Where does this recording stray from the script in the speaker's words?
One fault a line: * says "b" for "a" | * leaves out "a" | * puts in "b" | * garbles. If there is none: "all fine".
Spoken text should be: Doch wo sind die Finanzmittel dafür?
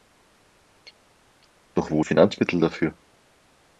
* leaves out "sind"